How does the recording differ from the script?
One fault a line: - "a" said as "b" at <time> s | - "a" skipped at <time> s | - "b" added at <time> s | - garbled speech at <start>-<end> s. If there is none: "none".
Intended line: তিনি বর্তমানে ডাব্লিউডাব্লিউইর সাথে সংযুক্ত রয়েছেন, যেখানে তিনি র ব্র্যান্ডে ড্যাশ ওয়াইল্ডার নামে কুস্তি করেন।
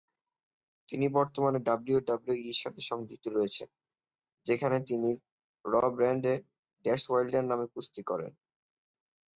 none